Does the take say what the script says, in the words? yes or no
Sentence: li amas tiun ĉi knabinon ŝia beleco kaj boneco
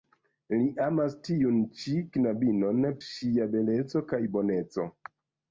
yes